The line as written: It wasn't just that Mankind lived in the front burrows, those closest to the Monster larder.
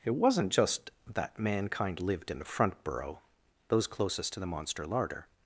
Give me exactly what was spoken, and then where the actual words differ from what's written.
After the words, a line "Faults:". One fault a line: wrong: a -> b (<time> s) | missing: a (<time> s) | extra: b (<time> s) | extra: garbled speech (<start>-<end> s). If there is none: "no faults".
It wasn't just that Mankind lived in the front burrow, those closest to the Monster larder.
Faults:
wrong: burrows -> burrow (2.8 s)